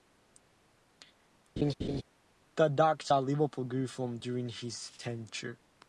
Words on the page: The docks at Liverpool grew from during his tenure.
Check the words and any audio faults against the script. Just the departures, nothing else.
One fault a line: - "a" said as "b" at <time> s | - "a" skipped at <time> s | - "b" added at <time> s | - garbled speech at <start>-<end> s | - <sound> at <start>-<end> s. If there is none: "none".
- laugh at 1.6-2.0 s